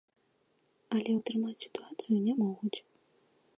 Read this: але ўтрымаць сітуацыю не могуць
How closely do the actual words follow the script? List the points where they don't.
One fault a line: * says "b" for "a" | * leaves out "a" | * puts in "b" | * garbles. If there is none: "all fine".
all fine